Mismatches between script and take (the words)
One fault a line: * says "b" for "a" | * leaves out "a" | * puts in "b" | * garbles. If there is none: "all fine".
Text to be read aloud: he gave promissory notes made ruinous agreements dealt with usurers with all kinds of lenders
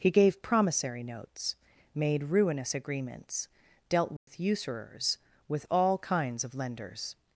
all fine